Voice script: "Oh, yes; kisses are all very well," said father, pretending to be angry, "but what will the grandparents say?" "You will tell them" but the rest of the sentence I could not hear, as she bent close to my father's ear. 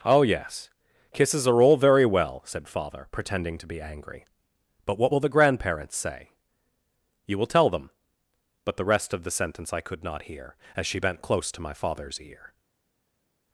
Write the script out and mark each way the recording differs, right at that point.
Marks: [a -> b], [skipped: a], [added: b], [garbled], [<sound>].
"Oh, yes; kisses are all very well," said father, pretending to be angry, "but what will the grandparents say?" "You will tell them" but the rest of the sentence I could not hear, as she bent close to my father's ear.